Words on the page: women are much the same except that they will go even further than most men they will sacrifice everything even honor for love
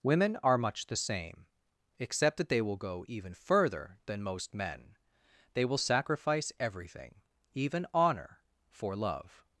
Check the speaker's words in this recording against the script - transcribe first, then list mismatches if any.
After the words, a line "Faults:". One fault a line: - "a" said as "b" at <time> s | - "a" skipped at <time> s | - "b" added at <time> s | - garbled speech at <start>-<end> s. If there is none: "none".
women are much the same except that they will go even further than most men they will sacrifice everything even honor for love
Faults:
none